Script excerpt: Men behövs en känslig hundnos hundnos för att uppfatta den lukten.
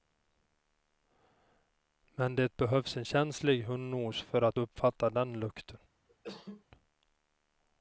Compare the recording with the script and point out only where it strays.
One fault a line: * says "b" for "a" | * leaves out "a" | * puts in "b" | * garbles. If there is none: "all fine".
* puts in "det"
* leaves out "hundnos"